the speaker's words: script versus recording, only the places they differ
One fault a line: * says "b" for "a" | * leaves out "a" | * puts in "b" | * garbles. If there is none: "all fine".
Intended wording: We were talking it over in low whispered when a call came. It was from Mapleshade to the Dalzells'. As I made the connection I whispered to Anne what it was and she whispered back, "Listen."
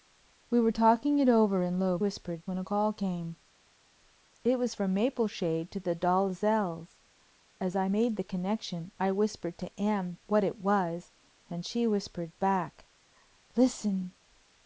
all fine